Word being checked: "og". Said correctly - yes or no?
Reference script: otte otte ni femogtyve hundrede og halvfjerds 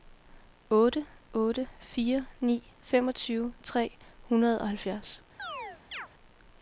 yes